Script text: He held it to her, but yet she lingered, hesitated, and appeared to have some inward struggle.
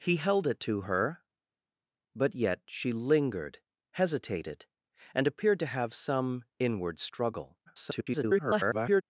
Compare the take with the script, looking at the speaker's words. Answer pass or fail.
fail